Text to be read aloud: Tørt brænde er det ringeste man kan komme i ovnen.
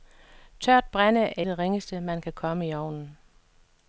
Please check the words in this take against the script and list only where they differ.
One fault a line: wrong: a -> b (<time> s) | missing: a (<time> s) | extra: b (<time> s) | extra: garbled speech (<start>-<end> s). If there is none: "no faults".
no faults